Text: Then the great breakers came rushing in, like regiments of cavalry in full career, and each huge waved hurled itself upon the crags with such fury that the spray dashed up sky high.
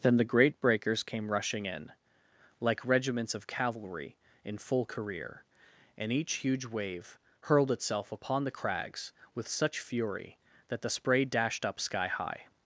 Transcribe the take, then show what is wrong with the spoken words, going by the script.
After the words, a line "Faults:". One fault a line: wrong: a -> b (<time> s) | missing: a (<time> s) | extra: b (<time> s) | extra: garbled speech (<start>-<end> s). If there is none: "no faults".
Then the great breakers came rushing in, like regiments of cavalry in full career, and each huge wave hurled itself upon the crags with such fury that the spray dashed up sky high.
Faults:
wrong: waved -> wave (6.7 s)